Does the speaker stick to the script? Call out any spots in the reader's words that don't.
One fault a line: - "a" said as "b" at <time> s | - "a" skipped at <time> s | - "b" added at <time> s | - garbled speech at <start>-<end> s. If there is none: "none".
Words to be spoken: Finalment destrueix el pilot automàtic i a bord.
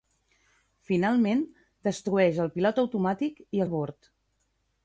none